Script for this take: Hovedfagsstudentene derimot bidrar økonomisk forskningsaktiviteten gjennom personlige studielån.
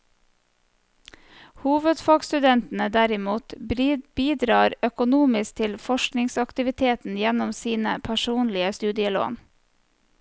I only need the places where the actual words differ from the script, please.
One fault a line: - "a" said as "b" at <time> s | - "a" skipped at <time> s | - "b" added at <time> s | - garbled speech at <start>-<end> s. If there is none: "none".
- "til" added at 5.6 s
- "sine" added at 7.6 s